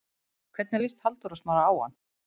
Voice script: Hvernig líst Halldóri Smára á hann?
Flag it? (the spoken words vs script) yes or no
no